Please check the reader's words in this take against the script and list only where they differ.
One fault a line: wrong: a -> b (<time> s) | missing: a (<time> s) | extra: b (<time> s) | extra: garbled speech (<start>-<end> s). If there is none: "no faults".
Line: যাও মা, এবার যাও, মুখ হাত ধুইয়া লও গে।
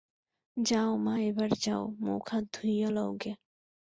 no faults